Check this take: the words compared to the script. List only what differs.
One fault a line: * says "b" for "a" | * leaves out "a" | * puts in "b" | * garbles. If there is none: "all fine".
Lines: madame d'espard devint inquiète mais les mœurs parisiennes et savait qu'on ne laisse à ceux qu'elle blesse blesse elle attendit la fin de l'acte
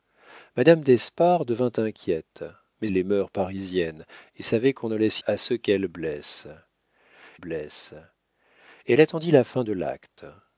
all fine